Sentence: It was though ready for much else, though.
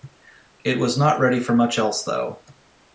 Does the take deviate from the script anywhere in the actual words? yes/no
yes